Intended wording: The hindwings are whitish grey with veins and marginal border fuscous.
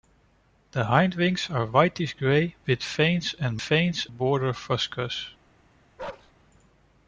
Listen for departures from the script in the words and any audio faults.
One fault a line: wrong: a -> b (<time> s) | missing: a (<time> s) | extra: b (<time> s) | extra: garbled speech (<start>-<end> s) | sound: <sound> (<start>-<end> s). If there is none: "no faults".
wrong: marginal -> veins (3.6 s)
sound: bark (6.0-6.3 s)